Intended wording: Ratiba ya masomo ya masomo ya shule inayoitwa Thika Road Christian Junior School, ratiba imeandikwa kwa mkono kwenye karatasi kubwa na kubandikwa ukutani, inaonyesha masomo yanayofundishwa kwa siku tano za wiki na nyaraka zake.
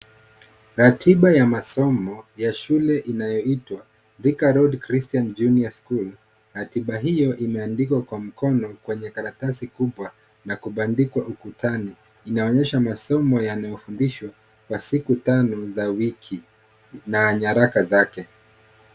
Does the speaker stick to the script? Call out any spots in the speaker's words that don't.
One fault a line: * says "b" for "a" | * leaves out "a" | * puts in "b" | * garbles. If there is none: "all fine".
* leaves out "masomo ya"
* puts in "hiyo"